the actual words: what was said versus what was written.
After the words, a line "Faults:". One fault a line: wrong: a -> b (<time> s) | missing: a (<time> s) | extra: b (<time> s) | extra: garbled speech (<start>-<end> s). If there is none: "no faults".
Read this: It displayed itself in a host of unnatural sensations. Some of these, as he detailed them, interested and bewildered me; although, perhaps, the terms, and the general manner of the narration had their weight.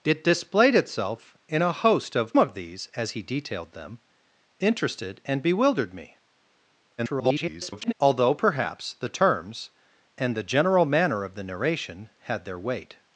It displayed itself in a host of of these, as he detailed them, interested and bewildered me; [garbled] although, perhaps, the terms, and the general manner of the narration had their weight.
Faults:
missing: unnatural sensations Some (2.3 s)
extra: garbled speech (7.0-7.9 s)